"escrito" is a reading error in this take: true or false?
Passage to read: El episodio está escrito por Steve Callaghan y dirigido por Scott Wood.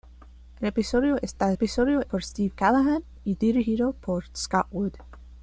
true